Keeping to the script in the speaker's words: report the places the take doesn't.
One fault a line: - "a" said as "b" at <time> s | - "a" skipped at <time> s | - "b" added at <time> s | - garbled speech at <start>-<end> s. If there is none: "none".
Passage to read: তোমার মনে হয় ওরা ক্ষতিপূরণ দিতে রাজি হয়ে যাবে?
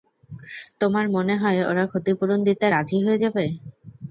none